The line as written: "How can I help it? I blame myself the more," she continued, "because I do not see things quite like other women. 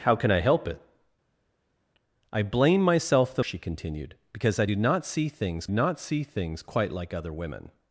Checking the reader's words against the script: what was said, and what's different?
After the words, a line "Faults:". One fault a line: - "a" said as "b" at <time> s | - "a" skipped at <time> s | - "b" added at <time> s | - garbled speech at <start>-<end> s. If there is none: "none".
"How can I help it? I blame myself the," she continued, "because I do not see things not see things quite like other women.
Faults:
- "more" skipped at 3.4 s
- "not see things" added at 5.7 s